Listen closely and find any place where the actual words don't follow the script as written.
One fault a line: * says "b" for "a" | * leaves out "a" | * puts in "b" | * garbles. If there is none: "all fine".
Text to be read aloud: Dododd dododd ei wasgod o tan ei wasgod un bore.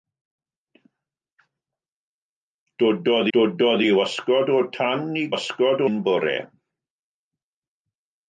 all fine